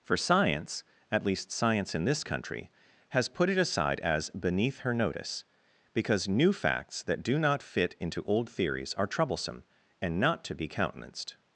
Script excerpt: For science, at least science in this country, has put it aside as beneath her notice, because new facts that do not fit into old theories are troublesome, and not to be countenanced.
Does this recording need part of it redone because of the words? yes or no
no